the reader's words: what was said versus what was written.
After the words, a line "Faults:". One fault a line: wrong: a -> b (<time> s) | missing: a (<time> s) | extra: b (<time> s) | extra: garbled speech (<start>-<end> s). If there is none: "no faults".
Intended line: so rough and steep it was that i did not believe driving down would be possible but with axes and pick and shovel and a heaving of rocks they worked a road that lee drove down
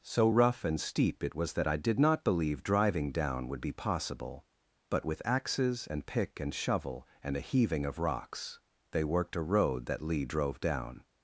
so rough and steep it was that i did not believe driving down would be possible but with axes and pick and shovel and a heaving of rocks they worked a road that lee drove down
Faults:
no faults